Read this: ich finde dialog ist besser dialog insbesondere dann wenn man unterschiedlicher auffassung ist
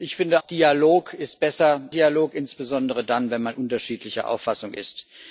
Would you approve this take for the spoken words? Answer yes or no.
yes